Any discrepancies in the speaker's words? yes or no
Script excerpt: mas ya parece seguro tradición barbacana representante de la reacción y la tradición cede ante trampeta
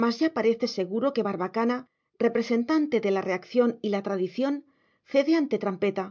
yes